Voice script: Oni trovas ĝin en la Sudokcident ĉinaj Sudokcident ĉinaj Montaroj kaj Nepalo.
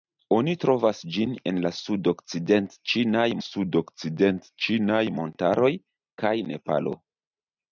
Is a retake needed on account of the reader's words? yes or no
no